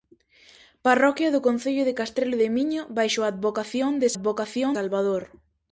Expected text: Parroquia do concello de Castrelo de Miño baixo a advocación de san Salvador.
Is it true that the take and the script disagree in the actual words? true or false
true